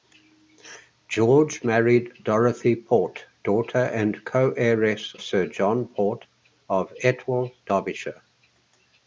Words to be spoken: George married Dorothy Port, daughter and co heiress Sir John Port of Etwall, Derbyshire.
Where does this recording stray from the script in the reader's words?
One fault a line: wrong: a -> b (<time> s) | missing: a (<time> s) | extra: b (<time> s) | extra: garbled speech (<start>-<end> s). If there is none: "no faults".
no faults